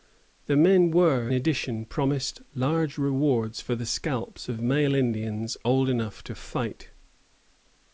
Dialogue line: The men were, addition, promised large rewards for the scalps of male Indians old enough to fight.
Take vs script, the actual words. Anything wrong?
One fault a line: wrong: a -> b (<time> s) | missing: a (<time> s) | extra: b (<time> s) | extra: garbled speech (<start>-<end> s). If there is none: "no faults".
no faults